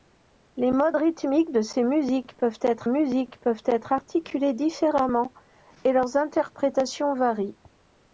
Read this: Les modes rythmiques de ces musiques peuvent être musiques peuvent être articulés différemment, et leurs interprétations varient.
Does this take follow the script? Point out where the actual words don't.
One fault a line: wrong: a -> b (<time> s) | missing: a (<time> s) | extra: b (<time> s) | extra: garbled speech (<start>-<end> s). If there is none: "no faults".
no faults